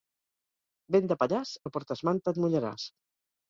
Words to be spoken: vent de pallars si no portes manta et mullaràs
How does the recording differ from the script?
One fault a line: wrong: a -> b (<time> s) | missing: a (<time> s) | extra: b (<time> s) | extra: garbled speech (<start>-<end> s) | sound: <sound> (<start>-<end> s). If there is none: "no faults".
missing: si (1.5 s)